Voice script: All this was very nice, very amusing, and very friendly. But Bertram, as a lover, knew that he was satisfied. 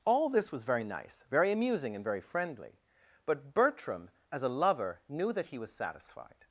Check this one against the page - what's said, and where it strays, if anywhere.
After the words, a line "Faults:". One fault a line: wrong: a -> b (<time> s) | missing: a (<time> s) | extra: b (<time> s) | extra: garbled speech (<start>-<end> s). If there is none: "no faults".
All this was very nice, very amusing, and very friendly. But Bertram, as a lover, knew that he was satisfied.
Faults:
no faults